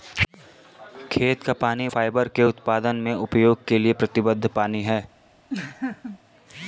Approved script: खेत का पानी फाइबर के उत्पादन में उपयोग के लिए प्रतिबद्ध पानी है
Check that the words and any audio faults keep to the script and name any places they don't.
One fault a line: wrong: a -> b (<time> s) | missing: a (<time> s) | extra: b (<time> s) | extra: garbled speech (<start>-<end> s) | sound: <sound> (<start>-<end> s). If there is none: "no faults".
sound: laugh (5.5-6.2 s)